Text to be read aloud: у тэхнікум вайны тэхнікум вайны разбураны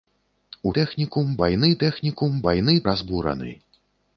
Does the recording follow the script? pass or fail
pass